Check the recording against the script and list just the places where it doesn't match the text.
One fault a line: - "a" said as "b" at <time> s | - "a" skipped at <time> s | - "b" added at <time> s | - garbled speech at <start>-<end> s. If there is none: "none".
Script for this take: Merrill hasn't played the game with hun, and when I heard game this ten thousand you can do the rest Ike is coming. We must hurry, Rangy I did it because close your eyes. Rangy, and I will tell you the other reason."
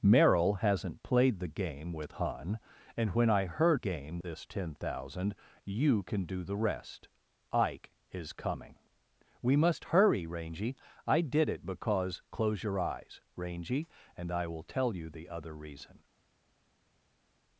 none